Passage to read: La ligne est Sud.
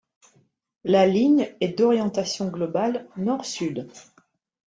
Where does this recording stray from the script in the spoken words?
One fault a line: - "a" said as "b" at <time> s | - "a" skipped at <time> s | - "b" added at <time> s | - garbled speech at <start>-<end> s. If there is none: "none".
- "d'orientation globale Nord" added at 1.8 s